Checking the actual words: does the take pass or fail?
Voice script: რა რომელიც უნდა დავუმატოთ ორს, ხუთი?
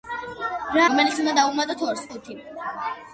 pass